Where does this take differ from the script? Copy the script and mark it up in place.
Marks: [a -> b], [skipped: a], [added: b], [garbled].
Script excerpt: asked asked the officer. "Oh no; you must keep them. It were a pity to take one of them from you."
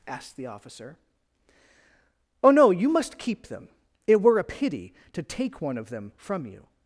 asked [skipped: asked] the officer. "Oh no; you must keep them. It were a pity to take one of them from you."